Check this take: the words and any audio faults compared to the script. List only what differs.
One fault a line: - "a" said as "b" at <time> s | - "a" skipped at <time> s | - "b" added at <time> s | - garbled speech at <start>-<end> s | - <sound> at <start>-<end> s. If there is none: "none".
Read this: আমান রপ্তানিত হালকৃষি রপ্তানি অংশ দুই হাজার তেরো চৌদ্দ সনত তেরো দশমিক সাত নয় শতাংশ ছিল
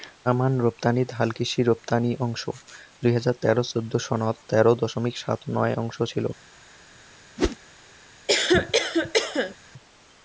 - whoosh at 7.4-7.6 s
- cough at 8.3-9.6 s